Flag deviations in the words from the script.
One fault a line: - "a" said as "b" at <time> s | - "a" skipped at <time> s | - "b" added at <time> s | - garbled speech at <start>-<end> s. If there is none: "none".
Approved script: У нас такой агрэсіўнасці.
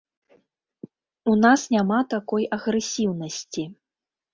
- "няма" added at 1.8 s